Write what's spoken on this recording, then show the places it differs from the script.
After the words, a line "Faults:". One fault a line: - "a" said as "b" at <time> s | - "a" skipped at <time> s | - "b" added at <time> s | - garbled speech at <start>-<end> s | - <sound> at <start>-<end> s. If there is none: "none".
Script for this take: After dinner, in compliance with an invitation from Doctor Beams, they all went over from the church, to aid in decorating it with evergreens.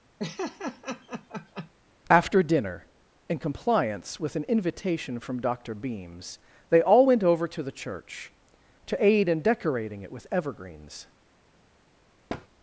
After dinner, in compliance with an invitation from Doctor Beams, they all went over to the church, to aid in decorating it with evergreens.
Faults:
- laugh at 0.2-1.7 s
- "from" said as "to" at 7.5 s
- thud at 12.3-12.5 s